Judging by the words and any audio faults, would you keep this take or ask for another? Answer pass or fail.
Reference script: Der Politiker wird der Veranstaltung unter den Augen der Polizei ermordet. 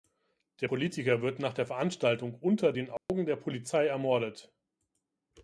fail